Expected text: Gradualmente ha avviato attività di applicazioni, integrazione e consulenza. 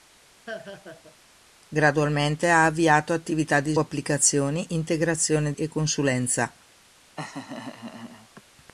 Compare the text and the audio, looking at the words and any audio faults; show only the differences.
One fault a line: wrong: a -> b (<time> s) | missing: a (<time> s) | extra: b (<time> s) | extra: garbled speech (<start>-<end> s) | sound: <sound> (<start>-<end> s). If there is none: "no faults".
sound: laugh (0.5-1.2 s)
sound: laugh (7.2-8.4 s)